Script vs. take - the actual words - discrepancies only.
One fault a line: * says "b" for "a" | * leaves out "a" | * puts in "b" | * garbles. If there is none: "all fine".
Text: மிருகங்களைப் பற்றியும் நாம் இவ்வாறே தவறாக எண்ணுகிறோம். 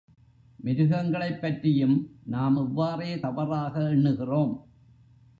all fine